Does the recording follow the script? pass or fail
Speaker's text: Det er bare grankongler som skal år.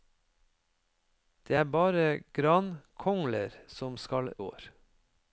pass